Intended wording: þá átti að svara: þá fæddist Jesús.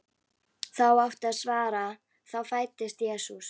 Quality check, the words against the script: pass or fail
pass